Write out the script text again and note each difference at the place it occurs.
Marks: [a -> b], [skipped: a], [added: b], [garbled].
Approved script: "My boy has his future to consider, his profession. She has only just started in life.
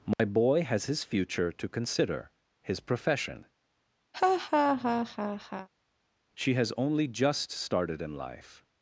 "My boy has his future to consider, his profession. She has only just started in life.